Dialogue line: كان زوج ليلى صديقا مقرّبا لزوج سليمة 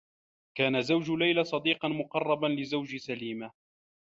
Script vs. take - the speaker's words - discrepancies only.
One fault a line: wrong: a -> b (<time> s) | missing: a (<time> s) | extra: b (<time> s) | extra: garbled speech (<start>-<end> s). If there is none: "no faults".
no faults